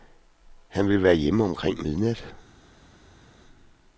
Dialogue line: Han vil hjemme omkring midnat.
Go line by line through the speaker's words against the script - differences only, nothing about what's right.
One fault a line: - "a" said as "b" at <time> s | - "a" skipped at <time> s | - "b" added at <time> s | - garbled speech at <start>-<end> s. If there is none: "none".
- "være" added at 1.0 s